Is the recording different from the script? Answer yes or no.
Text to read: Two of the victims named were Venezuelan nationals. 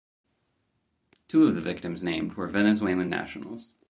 no